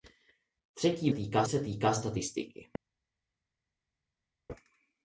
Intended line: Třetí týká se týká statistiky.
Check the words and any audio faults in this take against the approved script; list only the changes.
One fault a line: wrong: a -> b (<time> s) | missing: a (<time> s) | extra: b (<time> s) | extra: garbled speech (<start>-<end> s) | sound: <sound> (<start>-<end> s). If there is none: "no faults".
no faults